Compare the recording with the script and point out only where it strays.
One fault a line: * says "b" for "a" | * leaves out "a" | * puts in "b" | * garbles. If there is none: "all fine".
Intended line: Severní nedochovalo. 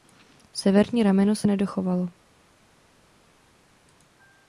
* puts in "rameno se"